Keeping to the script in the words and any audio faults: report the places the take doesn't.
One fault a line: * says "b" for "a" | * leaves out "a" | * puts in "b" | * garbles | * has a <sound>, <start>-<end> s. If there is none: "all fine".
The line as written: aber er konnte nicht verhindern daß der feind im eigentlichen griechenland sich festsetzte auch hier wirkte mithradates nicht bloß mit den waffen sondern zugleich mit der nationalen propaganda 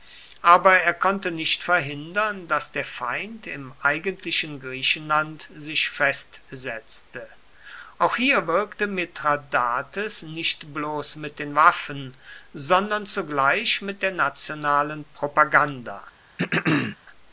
* has a throat clearing, 16.4-17.0 s